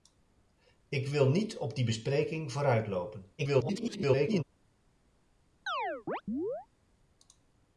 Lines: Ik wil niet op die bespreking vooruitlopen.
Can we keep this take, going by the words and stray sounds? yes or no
no